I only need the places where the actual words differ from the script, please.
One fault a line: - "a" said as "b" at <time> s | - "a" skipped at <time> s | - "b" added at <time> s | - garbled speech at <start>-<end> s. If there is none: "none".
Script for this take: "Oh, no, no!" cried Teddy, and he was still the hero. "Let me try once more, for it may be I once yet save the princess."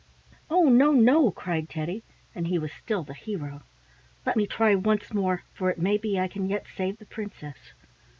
- "once" said as "can" at 6.3 s